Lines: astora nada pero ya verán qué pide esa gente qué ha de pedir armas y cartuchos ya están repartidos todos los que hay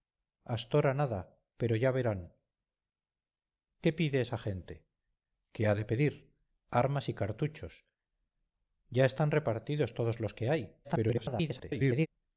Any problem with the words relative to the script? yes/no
yes